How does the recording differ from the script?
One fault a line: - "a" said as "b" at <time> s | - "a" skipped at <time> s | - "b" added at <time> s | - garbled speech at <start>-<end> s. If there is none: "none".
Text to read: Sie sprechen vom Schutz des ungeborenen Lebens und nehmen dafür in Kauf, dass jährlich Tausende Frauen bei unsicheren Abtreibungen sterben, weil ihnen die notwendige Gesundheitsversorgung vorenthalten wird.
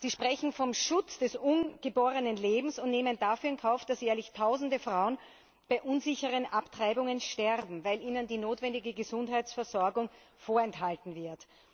none